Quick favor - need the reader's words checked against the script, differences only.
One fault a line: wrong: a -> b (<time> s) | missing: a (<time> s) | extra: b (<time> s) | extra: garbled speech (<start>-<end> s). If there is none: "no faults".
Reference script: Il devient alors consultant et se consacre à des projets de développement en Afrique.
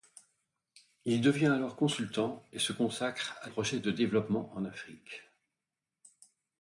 missing: des (3.5 s)